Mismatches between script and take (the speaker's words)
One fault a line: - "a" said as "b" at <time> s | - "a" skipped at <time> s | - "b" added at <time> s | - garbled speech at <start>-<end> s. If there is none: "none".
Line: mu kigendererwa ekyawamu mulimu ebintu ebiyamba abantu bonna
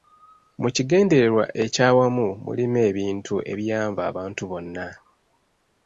none